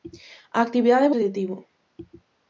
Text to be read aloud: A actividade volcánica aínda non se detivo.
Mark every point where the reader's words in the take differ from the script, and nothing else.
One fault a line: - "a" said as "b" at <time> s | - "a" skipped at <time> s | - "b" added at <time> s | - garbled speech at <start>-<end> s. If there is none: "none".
- "volcánica aínda non" skipped at 1.1 s